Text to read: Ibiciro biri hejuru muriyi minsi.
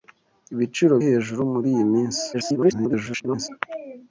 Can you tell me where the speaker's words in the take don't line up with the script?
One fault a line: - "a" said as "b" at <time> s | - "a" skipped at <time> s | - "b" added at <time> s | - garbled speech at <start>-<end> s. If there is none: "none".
- "biri" skipped at 0.9 s
- garbled speech at 2.3-3.5 s